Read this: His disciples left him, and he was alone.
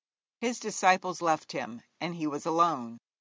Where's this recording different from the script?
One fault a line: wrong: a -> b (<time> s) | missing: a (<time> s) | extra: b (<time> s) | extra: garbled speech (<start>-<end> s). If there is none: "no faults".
no faults